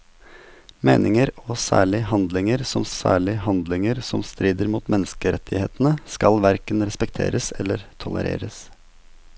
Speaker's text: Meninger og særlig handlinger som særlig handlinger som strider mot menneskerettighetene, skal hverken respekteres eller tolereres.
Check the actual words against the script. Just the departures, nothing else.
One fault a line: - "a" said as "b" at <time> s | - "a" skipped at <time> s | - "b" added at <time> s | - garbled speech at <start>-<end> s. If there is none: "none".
none